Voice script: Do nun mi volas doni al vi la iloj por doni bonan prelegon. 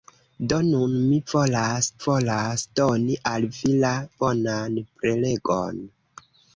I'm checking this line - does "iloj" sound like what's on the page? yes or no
no